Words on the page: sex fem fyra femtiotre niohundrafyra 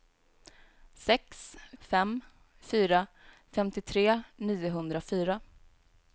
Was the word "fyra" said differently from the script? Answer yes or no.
no